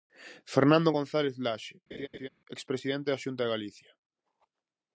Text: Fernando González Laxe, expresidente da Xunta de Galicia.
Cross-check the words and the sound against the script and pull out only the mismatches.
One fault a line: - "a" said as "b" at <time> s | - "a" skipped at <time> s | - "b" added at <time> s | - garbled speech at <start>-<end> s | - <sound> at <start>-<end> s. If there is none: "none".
- laugh at 1.9-2.3 s